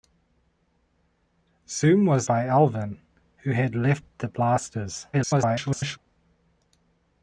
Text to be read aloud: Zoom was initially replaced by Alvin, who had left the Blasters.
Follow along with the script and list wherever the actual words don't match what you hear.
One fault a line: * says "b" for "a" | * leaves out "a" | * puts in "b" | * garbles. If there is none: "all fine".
* leaves out "initially replaced"
* garbles